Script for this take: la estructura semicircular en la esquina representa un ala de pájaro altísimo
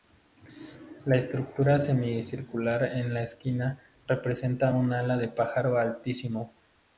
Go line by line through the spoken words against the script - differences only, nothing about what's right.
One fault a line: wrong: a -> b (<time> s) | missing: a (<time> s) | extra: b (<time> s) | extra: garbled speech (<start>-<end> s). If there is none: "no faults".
no faults